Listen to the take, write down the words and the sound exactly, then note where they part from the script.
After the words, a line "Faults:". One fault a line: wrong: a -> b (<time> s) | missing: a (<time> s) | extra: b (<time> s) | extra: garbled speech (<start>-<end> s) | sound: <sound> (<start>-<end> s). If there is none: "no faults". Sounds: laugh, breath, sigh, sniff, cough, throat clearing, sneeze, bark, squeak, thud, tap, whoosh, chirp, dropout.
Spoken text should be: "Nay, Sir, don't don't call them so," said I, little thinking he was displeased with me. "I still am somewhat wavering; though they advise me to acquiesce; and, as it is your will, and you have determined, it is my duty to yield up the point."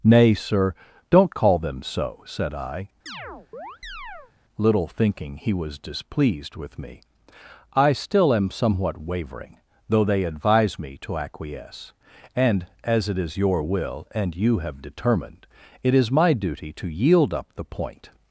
"Nay, Sir, don't call them so," said I, little thinking he was displeased with me. "I still am somewhat wavering; though they advise me to acquiesce; and, as it is your will, and you have determined, it is my duty to yield up the point."
Faults:
missing: don't (1.4 s)
sound: chirp (3.1-4.3 s)